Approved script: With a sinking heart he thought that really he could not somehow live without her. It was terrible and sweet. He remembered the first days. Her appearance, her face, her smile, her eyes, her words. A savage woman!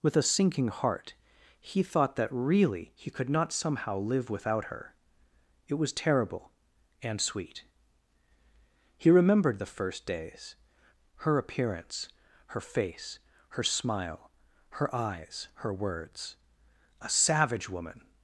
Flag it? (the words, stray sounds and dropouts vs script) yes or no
no